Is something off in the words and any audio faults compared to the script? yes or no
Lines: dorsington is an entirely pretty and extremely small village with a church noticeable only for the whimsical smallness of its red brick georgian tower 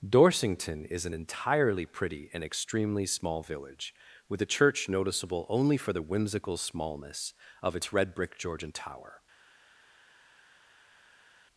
no